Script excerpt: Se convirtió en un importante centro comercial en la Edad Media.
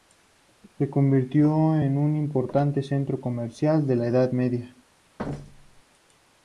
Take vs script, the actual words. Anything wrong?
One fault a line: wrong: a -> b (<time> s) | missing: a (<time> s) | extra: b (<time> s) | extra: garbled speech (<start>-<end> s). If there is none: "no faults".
no faults